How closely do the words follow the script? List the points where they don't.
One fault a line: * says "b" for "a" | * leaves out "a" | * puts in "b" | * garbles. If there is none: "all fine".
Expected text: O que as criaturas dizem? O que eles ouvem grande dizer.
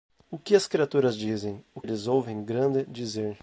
* leaves out "que"